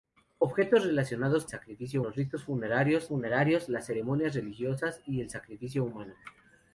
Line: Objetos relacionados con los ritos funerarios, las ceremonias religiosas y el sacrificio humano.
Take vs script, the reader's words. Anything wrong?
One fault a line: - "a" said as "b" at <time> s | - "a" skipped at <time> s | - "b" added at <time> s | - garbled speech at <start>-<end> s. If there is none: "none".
- "con" said as "sacrificio" at 1.5 s
- "funerarios" added at 3.1 s